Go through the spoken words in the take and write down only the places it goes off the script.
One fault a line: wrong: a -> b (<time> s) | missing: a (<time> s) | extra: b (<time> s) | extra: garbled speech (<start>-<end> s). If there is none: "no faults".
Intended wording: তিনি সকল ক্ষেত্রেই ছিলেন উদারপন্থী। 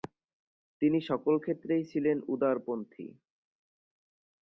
no faults